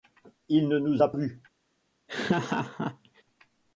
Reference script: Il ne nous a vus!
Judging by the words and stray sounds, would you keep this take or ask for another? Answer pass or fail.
fail